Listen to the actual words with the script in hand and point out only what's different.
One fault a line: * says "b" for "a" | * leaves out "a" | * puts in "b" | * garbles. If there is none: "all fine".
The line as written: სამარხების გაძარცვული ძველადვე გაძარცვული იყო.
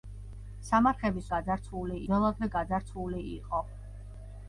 all fine